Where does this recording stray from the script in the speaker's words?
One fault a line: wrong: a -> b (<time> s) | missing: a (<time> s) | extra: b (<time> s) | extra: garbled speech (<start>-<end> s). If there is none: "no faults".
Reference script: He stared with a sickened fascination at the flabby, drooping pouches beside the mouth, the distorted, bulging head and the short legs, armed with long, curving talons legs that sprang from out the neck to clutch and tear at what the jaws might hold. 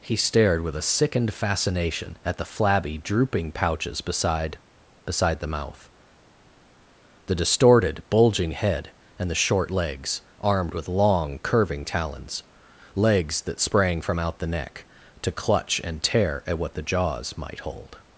extra: beside (5.0 s)